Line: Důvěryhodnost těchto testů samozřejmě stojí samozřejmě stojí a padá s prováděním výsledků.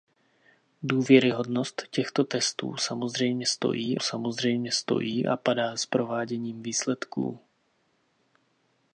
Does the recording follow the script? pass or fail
pass